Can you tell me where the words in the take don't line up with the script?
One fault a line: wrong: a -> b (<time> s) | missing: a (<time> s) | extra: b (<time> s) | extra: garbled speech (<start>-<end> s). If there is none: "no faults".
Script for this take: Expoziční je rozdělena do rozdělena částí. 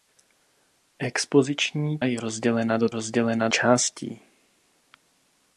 no faults